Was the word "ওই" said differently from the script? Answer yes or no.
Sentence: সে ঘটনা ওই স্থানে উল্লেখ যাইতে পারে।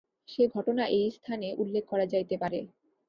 yes